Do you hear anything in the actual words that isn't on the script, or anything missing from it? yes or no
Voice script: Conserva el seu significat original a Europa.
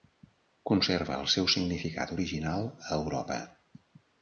no